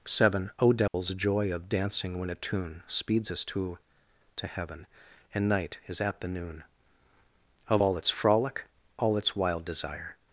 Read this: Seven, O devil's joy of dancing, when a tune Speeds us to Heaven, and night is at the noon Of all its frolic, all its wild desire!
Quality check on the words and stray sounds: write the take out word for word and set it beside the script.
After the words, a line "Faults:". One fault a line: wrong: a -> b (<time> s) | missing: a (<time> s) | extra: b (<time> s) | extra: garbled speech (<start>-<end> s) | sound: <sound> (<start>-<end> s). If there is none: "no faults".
Seven, O devil's joy of dancing, when a tune Speeds us to to Heaven, and night is at the noon Of all its frolic, all its wild desire!
Faults:
sound: dropout (0.9-0.9 s)
extra: to (4.3 s)